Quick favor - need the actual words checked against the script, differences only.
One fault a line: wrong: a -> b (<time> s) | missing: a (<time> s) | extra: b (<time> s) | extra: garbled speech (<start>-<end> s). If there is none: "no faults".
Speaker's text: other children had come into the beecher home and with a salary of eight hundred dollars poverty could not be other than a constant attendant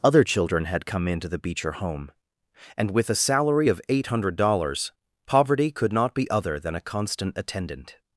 no faults